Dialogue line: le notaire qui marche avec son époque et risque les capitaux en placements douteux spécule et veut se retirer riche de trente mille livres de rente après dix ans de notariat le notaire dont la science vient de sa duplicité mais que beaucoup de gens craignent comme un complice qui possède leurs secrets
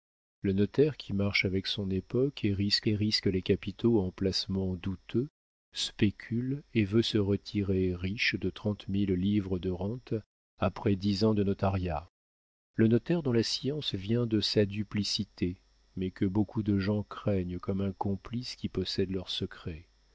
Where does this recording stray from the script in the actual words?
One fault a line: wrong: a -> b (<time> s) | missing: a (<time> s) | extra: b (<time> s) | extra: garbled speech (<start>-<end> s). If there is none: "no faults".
extra: et risque (2.9 s)